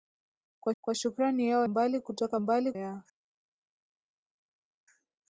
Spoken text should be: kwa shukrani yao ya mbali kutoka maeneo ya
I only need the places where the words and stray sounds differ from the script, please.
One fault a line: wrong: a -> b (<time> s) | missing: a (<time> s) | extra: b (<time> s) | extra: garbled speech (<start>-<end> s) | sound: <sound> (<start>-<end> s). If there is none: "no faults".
extra: kwa (0.8 s)
missing: ya (1.7 s)
wrong: maeneo -> mbali (2.4 s)